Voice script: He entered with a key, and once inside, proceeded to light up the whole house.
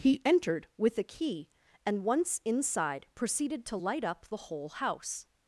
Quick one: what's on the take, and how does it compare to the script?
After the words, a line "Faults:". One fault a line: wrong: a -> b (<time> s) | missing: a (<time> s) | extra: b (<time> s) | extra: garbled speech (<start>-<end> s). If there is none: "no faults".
He entered with a key, and once inside, proceeded to light up the whole house.
Faults:
no faults